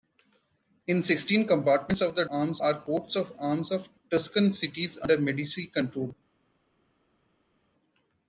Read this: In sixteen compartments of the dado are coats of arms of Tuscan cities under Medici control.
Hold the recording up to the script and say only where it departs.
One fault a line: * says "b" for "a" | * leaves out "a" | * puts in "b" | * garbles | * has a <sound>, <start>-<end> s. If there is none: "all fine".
* says "arms" for "dado"